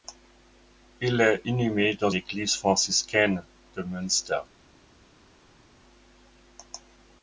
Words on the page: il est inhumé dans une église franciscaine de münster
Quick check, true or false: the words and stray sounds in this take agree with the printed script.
false